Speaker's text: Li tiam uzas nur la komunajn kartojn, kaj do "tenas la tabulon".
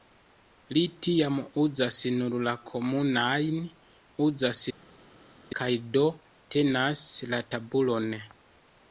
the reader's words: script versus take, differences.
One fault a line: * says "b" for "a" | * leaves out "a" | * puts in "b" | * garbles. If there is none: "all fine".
* says "uzas" for "kartojn"